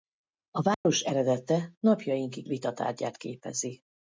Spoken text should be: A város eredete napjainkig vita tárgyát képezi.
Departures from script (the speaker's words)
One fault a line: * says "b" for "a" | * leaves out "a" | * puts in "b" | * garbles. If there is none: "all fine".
all fine